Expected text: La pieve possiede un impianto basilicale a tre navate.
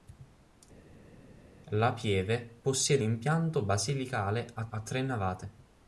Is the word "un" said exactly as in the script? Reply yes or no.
no